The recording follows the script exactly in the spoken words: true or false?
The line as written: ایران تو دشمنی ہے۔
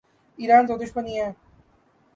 true